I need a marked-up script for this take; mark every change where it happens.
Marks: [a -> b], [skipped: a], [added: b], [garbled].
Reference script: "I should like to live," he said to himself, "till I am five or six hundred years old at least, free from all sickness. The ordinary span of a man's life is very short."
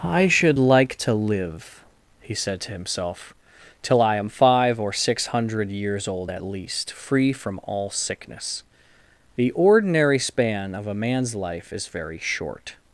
"I should like to live," he said to himself, "till I am five or six hundred years old at least, free from all sickness. The ordinary span of a man's life is very short."